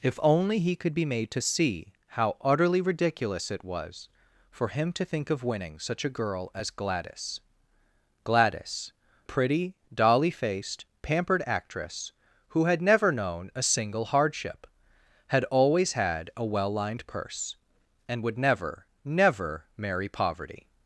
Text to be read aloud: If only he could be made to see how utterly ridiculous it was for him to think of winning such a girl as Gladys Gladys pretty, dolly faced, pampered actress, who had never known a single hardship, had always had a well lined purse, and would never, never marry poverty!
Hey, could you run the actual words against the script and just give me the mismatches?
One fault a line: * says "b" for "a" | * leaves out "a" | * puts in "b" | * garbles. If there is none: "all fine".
all fine